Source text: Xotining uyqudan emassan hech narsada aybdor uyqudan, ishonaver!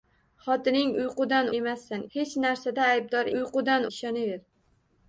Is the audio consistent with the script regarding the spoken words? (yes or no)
yes